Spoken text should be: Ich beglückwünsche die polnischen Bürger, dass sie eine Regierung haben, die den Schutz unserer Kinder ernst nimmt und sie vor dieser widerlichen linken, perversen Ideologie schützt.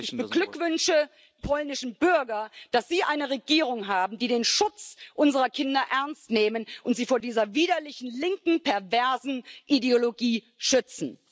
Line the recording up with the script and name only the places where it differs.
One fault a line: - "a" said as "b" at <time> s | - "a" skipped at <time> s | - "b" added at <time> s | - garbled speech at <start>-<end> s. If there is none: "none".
- "die" skipped at 1.1 s